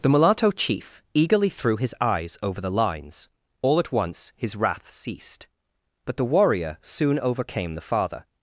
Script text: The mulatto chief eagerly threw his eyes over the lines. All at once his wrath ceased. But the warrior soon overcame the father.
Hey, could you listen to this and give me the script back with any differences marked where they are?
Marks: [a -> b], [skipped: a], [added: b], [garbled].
The mulatto chief eagerly threw his eyes over the lines. All at once his wrath ceased. But the warrior soon overcame the father.